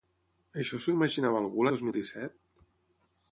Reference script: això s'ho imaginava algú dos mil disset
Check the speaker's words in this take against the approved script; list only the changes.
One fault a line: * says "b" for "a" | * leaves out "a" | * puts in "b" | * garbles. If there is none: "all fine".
all fine